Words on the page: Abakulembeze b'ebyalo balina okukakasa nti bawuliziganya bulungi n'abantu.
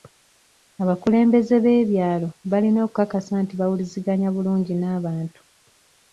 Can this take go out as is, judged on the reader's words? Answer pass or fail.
pass